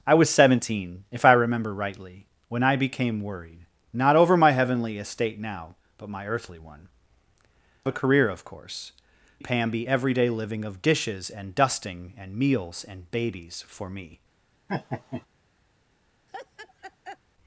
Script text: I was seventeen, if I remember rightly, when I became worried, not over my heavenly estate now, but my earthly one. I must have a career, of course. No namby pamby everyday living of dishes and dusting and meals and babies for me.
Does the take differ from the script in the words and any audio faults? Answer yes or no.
yes